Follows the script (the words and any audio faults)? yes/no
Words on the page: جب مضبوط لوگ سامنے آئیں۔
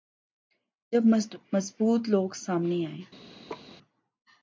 no